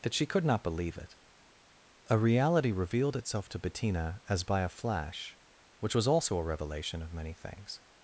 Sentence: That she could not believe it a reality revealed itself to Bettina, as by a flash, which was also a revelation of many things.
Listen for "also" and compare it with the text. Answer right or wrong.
right